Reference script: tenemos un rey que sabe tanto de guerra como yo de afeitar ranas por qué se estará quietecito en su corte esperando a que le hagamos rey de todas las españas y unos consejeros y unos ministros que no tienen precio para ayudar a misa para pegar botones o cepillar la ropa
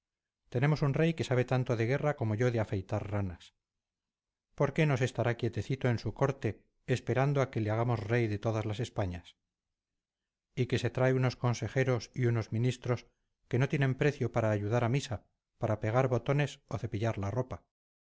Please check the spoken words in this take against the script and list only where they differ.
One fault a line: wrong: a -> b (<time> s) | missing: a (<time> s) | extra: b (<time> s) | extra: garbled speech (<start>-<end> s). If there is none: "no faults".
extra: no (4.9 s)
extra: que se trae (10.7 s)